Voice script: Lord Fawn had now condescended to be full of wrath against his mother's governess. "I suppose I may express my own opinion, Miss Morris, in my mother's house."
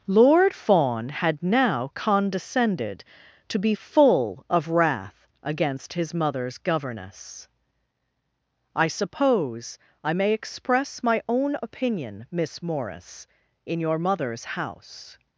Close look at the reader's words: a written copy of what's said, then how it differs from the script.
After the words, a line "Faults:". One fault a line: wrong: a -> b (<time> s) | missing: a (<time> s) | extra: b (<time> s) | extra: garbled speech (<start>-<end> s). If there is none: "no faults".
Lord Fawn had now condescended to be full of wrath against his mother's governess. "I suppose I may express my own opinion, Miss Morris, in your mother's house."
Faults:
wrong: my -> your (13.8 s)